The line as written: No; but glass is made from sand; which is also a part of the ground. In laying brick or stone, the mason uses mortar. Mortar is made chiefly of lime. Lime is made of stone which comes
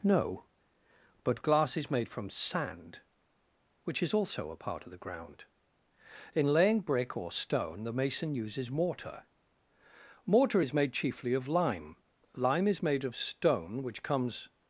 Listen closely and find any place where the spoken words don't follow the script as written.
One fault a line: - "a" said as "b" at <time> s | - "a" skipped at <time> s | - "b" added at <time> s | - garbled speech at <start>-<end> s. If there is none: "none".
none